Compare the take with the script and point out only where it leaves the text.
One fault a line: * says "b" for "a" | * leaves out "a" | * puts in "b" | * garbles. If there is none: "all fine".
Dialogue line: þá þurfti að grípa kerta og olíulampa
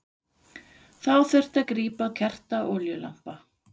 all fine